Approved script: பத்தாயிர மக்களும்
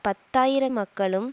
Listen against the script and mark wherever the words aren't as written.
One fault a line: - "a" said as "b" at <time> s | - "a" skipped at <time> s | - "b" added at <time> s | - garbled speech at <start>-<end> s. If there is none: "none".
none